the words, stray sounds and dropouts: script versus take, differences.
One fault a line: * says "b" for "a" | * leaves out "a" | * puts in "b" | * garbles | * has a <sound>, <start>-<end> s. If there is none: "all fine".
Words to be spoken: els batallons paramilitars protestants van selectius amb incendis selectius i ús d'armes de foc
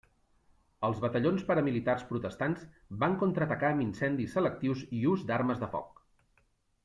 * says "contraatacar" for "selectius"